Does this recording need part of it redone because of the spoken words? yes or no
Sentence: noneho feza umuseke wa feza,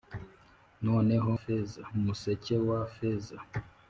no